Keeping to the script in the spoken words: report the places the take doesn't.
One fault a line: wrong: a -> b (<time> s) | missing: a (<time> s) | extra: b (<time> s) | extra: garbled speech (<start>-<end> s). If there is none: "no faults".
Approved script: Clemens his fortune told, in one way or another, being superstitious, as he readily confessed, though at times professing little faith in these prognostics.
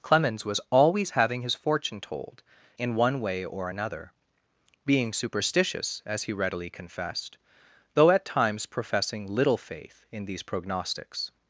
extra: was always having (0.4 s)